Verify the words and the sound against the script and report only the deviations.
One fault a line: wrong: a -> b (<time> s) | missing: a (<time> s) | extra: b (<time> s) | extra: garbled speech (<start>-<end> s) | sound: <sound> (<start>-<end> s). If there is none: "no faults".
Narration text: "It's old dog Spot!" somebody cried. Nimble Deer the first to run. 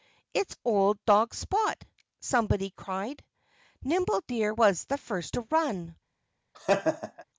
extra: was (4.5 s)
sound: laugh (6.5-7.2 s)